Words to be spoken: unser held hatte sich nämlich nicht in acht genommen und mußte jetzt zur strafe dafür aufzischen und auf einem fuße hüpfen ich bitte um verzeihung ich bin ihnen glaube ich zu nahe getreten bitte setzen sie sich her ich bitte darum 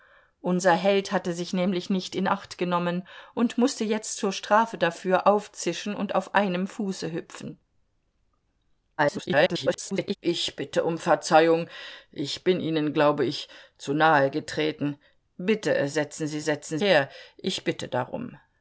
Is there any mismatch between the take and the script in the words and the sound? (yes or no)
yes